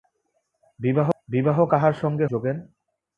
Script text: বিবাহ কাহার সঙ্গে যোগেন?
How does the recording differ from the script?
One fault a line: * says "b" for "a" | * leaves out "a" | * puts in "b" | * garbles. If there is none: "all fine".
all fine